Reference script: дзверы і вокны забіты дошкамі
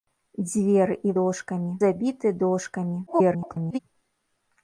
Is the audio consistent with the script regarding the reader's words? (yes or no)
no